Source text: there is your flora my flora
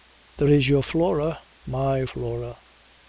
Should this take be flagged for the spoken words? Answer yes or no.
no